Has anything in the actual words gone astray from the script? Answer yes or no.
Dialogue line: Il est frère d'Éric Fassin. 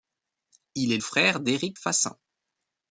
no